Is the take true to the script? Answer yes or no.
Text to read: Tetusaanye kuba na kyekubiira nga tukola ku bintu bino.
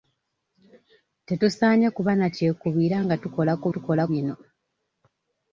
no